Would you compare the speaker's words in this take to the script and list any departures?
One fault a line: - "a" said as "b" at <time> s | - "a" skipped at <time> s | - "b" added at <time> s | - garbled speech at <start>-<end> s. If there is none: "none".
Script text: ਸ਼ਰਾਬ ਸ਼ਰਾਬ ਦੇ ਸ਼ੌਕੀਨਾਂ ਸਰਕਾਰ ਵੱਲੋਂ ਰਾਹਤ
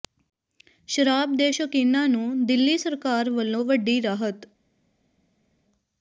- "ਸ਼ਰਾਬ" skipped at 1.4 s
- "ਨੂੰ ਦਿੱਲੀ" added at 2.1 s
- "ਵੱਡੀ" added at 3.6 s